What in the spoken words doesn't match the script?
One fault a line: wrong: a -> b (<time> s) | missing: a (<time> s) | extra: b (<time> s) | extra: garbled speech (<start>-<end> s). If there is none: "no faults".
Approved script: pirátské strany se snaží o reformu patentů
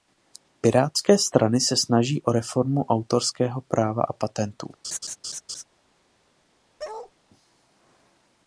extra: autorského práva a (2.9 s)